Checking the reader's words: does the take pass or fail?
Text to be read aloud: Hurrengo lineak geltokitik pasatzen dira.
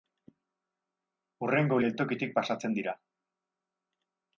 fail